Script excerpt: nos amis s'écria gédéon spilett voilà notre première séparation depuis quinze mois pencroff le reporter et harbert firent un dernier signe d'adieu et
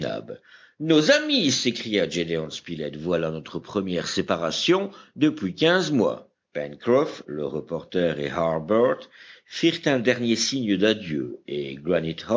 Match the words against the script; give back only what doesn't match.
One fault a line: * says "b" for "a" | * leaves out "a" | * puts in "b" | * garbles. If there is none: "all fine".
all fine